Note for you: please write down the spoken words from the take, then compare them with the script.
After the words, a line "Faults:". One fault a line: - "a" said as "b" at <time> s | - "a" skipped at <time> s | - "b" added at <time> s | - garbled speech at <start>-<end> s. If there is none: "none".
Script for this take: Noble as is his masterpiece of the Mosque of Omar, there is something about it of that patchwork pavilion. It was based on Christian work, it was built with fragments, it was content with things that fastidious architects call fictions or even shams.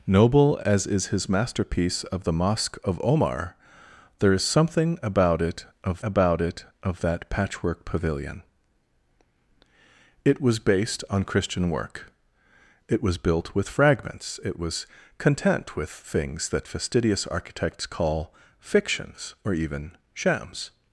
Noble as is his masterpiece of the Mosque of Omar, there is something about it of about it of that patchwork pavilion. It was based on Christian work, it was built with fragments, it was content with things that fastidious architects call fictions or even shams.
Faults:
- "about it of" added at 6.0 s